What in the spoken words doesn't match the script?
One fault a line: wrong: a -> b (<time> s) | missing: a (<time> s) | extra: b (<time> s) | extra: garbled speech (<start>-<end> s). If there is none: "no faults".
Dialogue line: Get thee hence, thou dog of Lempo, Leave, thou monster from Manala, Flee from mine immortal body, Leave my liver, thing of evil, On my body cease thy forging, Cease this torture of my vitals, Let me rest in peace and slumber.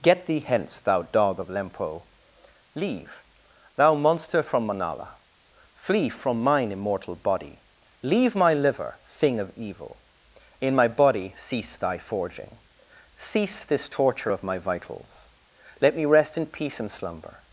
wrong: On -> In (10.6 s)